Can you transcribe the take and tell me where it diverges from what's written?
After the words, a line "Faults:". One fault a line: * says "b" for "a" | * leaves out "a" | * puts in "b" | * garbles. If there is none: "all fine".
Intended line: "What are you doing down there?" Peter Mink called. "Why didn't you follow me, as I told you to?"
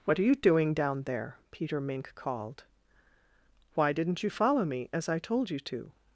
"What are you doing down there?" Peter Mink called. "Why didn't you follow me, as I told you to?"
Faults:
all fine